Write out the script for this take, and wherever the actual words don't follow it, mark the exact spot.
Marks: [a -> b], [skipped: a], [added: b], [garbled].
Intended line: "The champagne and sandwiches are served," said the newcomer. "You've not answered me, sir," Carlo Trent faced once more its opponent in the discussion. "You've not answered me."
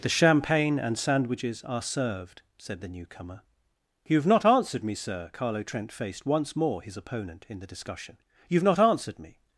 "The champagne and sandwiches are served," said the newcomer. "You've not answered me, sir," Carlo Trent faced once more [its -> his] opponent in the discussion. "You've not answered me."